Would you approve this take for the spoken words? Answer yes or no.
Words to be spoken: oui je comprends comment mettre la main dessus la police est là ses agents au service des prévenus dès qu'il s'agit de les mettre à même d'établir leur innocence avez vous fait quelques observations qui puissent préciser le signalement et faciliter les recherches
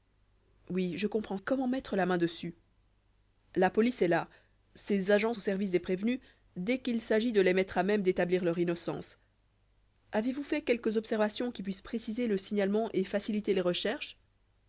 yes